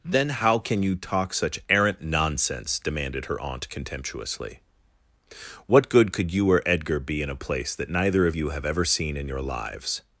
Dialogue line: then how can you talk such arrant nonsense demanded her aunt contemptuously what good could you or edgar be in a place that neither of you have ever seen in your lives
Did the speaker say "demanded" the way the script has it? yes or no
yes